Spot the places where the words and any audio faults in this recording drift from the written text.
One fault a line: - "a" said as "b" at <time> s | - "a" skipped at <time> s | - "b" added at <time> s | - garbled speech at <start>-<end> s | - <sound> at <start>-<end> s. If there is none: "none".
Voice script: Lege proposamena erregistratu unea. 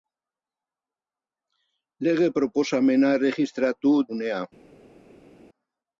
none